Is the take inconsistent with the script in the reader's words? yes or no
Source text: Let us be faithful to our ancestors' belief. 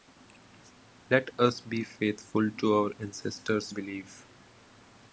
no